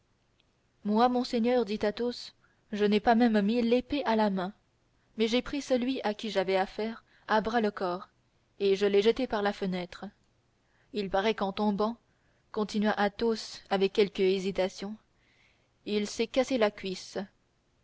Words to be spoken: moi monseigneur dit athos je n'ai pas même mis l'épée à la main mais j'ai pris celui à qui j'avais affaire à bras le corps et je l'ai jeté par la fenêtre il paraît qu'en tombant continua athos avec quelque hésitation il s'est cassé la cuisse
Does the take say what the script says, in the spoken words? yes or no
yes